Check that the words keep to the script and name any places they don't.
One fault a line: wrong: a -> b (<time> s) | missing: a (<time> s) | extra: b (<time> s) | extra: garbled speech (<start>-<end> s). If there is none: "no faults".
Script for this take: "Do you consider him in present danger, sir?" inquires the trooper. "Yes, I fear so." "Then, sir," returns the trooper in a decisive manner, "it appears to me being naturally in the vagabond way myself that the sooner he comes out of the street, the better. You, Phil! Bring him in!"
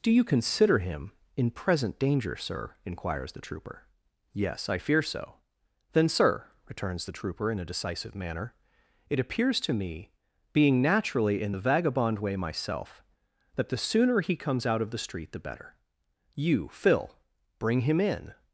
no faults